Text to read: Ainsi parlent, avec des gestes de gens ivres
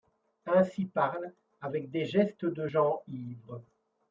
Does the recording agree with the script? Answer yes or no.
yes